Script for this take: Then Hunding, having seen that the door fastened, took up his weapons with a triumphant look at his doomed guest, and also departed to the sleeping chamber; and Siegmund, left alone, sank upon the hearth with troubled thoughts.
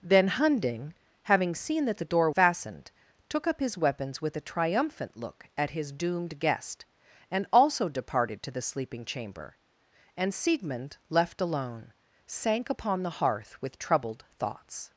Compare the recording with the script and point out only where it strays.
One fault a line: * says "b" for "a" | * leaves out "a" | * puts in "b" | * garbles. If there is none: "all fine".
all fine